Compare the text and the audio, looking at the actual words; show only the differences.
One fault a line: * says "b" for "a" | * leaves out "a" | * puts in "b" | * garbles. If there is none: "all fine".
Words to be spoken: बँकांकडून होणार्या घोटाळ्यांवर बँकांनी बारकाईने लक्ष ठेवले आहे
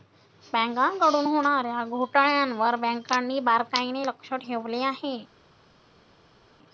all fine